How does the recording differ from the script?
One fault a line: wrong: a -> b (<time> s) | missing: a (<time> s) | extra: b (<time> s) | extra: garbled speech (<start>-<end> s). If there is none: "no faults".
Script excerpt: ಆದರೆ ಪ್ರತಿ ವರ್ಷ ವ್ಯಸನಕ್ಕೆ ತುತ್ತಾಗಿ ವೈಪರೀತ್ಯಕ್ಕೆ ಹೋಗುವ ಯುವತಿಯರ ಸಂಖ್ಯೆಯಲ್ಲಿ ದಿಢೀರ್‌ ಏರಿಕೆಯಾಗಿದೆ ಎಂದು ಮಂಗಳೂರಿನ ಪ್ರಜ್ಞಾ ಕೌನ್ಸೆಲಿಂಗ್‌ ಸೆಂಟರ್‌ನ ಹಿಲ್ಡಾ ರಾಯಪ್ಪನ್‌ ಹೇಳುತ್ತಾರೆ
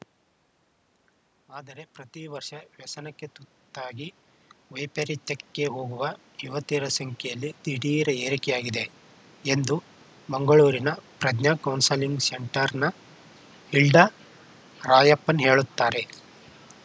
no faults